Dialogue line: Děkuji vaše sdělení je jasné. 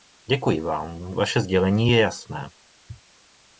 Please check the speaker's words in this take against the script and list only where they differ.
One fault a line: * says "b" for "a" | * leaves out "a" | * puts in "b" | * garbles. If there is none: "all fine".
* puts in "vám"